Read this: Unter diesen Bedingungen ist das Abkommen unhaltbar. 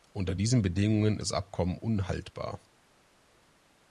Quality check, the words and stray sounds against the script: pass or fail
fail